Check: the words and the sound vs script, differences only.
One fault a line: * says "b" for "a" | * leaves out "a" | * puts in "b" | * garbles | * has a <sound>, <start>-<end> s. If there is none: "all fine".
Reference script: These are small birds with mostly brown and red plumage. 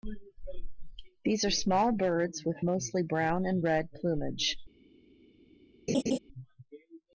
* has a laugh, 5.9-6.2 s